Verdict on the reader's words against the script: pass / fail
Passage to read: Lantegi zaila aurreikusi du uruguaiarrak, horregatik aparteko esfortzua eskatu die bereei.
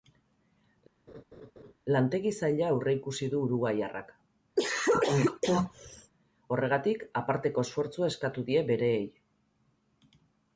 pass